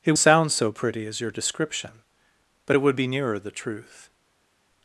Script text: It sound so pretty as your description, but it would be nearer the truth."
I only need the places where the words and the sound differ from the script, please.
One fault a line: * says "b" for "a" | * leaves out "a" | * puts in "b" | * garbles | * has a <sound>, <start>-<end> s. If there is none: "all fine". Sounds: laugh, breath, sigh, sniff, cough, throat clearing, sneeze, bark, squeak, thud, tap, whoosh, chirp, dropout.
all fine